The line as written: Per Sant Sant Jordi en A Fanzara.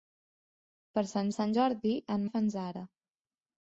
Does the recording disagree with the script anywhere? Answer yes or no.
no